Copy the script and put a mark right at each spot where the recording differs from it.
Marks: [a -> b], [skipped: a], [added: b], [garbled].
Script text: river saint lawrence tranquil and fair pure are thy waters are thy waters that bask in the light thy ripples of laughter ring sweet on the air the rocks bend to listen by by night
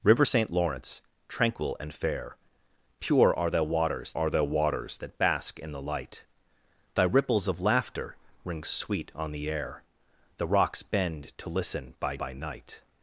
river saint lawrence tranquil and fair pure are thy waters are thy waters that bask in the light thy ripples of laughter ring sweet on the air the rocks bend to listen by by night